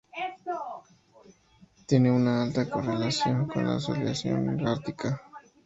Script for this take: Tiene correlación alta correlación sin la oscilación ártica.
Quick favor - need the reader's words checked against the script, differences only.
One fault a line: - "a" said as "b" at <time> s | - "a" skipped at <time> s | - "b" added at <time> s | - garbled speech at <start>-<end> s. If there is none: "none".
- "correlación" said as "una" at 2.1 s
- "sin" said as "con" at 3.5 s